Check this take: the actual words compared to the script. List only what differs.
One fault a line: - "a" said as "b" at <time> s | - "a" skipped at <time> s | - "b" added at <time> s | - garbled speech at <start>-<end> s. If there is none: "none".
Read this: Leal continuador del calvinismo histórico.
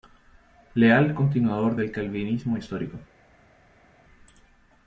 none